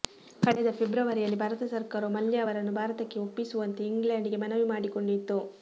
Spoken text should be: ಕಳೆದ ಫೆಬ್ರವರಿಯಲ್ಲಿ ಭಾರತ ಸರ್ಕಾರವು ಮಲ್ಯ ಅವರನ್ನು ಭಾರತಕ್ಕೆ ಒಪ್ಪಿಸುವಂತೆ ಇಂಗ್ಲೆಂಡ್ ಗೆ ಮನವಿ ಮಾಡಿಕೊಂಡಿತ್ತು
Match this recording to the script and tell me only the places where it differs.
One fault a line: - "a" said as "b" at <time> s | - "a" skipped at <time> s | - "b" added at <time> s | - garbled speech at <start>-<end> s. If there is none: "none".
none